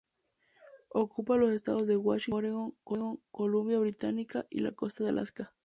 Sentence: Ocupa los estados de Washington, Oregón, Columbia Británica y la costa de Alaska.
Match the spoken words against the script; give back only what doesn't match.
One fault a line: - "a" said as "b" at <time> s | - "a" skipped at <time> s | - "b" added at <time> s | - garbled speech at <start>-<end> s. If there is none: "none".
none